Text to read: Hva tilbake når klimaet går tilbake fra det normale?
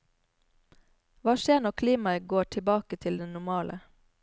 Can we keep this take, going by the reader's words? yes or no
no